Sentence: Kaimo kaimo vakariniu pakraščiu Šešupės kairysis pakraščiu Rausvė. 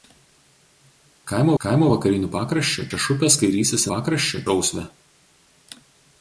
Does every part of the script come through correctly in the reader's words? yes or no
yes